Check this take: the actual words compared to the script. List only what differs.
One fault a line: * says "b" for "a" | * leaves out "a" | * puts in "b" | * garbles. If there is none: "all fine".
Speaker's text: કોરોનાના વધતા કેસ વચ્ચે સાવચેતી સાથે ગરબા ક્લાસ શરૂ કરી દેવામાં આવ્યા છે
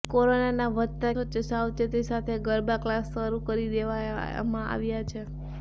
* leaves out "કેસ"